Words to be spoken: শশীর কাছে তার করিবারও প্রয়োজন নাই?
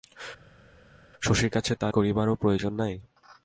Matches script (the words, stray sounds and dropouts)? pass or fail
pass